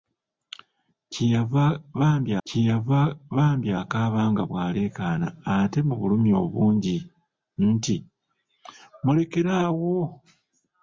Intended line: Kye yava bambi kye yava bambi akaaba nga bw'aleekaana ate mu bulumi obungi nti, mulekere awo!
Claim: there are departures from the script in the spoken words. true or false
false